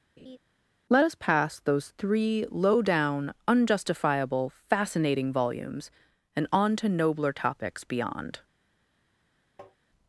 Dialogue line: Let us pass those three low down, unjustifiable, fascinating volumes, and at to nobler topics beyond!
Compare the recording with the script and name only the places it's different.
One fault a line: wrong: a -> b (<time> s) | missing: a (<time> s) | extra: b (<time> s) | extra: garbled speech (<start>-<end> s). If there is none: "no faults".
wrong: at -> on (6.5 s)